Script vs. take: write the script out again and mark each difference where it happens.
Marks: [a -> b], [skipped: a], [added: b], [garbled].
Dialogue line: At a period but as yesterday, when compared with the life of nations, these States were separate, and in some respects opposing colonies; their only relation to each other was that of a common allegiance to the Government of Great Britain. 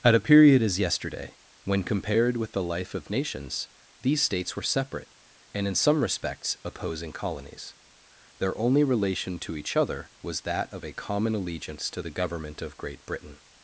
At a period [skipped: but] as yesterday, when compared with the life of nations, these States were separate, and in some respects opposing colonies; their only relation to each other was that of a common allegiance to the Government of Great Britain.